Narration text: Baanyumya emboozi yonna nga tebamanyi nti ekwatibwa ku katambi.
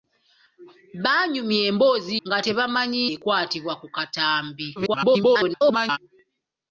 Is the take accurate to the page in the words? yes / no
no